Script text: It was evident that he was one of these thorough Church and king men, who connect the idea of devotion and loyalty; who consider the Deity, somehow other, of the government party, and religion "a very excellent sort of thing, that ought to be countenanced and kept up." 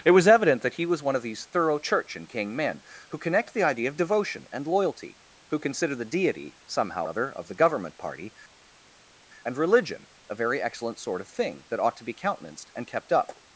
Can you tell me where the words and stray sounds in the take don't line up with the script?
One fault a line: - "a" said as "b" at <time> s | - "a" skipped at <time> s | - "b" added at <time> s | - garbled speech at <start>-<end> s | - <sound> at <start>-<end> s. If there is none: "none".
none